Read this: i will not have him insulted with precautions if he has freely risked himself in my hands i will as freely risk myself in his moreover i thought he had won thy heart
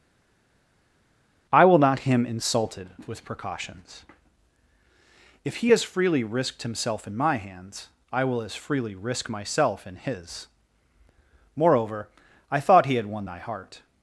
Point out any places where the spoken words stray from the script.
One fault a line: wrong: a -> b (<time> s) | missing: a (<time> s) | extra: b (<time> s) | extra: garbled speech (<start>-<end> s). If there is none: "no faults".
missing: have (2.0 s)